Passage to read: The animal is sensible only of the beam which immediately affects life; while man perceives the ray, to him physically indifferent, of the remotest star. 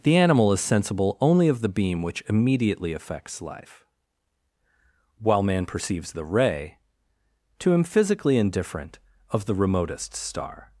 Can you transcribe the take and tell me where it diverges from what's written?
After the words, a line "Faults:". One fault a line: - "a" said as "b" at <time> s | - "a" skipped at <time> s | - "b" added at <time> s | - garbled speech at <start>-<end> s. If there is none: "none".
The animal is sensible only of the beam which immediately affects life; while man perceives the ray, to him physically indifferent, of the remotest star.
Faults:
none